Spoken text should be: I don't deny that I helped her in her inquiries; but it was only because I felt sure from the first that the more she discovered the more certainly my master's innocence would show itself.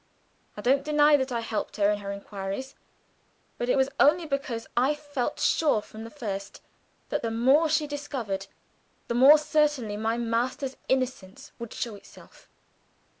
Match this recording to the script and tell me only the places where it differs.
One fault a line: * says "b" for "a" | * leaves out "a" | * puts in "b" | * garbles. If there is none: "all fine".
all fine